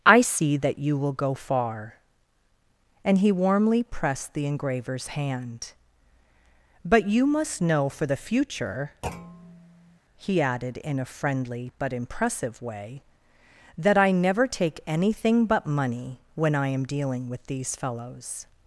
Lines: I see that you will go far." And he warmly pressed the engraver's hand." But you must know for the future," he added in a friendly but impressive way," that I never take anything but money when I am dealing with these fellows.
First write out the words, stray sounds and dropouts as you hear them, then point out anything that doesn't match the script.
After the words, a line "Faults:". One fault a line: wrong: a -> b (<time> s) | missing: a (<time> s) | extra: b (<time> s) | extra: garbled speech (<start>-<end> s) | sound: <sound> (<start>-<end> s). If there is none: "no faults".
I see that you will go far." And he warmly pressed the engraver's hand." But you must know for the future," he added in a friendly but impressive way," that I never take anything but money when I am dealing with these fellows.
Faults:
sound: thud (9.0-10.0 s)